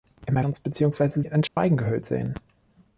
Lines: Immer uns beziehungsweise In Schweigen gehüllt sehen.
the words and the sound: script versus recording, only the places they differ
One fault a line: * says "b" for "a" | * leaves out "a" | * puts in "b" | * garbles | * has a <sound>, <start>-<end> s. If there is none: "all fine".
* has a dropout, 1.5-1.6 s